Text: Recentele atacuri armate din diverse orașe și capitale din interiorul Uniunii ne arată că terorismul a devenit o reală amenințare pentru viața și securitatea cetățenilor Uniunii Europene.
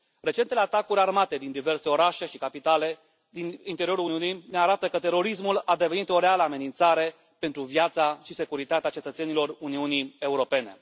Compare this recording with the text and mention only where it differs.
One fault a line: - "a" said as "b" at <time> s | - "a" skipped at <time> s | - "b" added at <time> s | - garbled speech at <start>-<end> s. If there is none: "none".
none